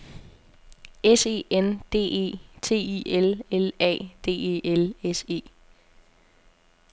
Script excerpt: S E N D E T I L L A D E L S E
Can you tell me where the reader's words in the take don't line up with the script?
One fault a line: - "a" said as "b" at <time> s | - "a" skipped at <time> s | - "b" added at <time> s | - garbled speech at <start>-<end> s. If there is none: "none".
none